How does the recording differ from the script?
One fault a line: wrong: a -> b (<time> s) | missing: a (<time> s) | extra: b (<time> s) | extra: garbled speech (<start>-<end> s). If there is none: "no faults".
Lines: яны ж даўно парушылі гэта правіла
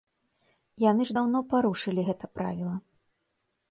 no faults